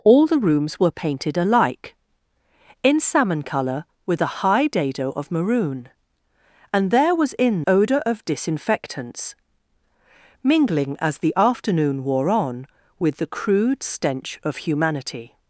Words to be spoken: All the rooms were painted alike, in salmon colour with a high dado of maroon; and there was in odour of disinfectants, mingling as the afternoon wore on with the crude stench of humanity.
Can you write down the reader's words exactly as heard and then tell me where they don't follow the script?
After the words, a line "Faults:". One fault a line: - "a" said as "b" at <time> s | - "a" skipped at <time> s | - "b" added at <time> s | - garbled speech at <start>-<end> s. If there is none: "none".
All the rooms were painted alike, in salmon colour with a high dado of maroon; and there was in odour of disinfectants, mingling as the afternoon wore on with the crude stench of humanity.
Faults:
none